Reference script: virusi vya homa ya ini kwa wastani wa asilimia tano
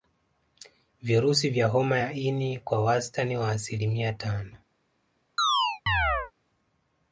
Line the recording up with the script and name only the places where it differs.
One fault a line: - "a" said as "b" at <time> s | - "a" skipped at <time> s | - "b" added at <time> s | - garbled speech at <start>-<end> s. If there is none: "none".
none